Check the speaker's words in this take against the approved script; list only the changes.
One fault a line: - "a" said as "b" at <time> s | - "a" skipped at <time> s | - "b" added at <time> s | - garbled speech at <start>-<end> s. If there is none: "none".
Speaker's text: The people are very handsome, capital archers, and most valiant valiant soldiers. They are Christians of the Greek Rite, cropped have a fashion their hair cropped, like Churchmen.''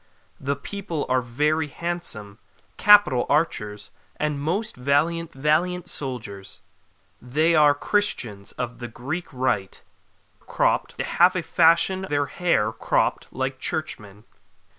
none